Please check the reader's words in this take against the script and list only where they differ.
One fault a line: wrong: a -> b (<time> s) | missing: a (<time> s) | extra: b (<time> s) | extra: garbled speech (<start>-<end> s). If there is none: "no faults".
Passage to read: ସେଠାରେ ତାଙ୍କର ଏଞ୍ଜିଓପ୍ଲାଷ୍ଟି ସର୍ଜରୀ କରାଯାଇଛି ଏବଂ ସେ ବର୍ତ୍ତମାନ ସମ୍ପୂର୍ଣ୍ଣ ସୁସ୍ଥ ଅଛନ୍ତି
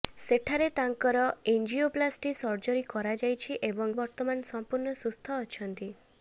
missing: ସେ (4.0 s)